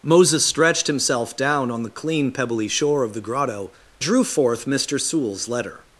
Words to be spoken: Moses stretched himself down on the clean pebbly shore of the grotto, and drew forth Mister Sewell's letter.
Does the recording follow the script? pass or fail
fail